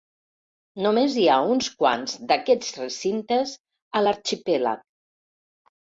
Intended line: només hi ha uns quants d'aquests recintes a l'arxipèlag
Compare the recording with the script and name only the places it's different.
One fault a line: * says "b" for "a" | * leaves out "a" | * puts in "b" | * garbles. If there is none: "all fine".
all fine